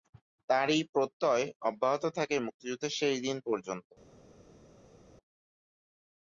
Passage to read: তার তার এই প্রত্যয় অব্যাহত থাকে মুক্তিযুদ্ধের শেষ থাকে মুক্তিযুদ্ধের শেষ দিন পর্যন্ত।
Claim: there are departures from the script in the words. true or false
true